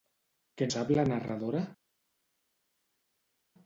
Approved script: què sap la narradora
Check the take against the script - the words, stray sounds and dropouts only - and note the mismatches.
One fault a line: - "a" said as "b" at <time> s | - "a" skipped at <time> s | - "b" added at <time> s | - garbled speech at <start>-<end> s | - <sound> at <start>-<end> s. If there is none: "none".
none